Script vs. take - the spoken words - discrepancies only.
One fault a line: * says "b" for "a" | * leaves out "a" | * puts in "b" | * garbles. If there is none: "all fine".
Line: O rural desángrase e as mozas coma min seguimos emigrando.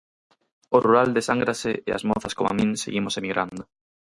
all fine